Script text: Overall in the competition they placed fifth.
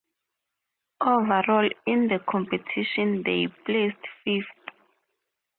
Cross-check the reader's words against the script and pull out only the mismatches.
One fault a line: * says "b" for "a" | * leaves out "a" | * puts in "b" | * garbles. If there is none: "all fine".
all fine